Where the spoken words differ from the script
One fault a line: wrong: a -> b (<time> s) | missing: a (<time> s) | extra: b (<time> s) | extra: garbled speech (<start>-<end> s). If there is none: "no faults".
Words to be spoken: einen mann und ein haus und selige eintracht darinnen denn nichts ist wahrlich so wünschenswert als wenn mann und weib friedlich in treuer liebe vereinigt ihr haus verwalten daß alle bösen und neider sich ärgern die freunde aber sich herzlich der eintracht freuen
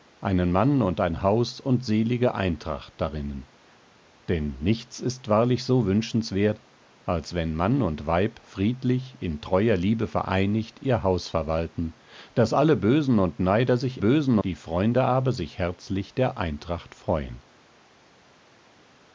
wrong: ärgern -> bösen (14.0 s)